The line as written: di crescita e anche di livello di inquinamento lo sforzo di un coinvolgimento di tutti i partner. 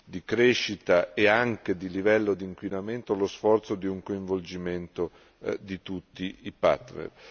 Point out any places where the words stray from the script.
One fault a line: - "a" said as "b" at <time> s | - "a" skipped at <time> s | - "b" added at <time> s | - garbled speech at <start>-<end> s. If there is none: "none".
none